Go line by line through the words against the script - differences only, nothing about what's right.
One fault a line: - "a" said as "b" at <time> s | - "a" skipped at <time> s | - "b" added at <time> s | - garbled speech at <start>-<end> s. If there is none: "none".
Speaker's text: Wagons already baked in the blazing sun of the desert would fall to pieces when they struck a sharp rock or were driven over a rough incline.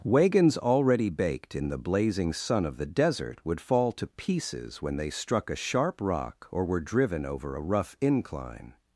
none